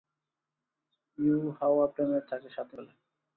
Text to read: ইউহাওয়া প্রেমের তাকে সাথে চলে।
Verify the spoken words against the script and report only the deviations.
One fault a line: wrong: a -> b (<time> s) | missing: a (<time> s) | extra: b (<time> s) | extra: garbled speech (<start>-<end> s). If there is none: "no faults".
no faults